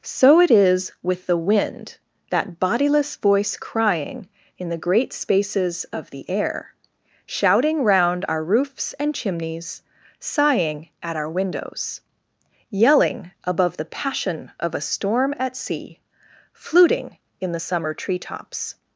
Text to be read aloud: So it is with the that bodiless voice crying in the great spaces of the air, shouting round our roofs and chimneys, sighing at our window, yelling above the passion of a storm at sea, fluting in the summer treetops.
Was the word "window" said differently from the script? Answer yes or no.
yes